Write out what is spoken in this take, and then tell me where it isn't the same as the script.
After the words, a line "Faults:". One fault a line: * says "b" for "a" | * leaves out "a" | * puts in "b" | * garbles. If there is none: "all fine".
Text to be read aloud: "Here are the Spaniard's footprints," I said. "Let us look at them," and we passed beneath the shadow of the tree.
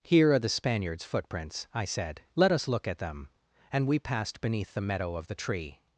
"Here are the Spaniard's footprints," I said. "Let us look at them," and we passed beneath the meadow of the tree.
Faults:
* says "meadow" for "shadow"